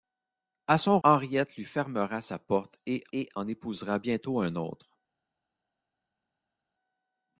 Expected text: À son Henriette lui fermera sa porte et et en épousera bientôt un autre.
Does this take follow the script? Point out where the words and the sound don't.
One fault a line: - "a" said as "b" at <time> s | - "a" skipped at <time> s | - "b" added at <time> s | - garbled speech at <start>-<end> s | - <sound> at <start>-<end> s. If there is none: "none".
none